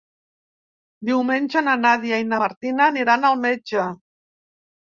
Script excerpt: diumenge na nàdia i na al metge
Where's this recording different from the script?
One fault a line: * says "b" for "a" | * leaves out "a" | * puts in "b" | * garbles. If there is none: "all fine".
* puts in "martina aniran"